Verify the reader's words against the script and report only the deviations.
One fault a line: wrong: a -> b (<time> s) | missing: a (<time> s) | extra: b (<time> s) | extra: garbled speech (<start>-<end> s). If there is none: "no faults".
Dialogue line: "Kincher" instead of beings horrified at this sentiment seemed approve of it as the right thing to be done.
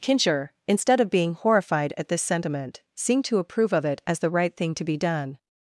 wrong: beings -> being (1.1 s)
extra: to (3.2 s)